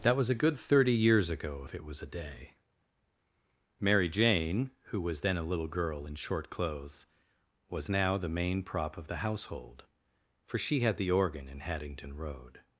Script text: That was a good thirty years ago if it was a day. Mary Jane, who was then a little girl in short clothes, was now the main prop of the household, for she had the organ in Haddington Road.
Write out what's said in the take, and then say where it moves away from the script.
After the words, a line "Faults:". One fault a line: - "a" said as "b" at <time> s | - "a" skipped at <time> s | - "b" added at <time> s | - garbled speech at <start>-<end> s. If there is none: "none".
That was a good thirty years ago if it was a day. Mary Jane, who was then a little girl in short clothes, was now the main prop of the household, for she had the organ in Haddington Road.
Faults:
none